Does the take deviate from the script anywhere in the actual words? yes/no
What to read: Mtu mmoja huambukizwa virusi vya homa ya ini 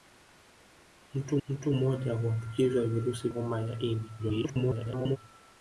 yes